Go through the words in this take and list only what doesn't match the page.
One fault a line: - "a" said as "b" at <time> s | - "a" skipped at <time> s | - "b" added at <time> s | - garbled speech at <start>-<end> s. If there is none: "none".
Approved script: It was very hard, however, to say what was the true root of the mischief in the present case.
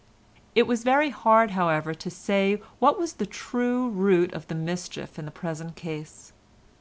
none